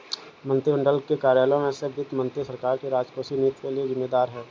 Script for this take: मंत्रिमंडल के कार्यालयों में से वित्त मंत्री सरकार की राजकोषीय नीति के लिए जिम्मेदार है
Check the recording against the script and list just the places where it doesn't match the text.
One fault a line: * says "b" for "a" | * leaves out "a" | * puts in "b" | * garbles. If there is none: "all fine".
all fine